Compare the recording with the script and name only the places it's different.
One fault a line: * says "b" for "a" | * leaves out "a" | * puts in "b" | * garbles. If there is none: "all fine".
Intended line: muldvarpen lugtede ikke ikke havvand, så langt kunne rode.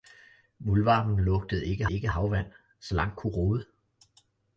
all fine